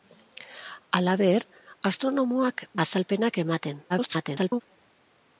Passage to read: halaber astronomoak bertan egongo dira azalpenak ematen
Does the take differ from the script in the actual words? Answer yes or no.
yes